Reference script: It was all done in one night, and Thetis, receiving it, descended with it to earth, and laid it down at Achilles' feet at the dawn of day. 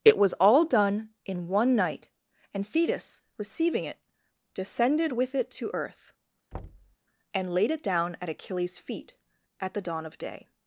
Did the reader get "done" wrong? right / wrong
right